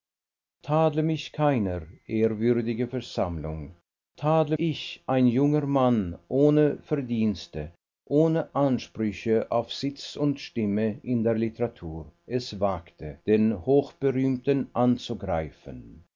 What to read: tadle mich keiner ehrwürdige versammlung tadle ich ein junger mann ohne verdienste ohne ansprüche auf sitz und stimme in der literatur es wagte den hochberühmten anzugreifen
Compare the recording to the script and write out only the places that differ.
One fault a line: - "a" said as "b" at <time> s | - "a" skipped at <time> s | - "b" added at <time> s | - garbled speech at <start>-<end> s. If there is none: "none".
none